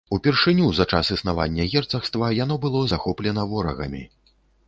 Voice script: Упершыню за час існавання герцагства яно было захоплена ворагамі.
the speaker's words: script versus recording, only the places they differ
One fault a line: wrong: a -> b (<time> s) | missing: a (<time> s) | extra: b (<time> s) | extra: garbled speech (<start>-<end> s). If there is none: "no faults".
no faults